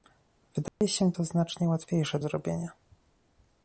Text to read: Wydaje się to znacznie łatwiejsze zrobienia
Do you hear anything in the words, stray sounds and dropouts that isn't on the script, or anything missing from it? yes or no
yes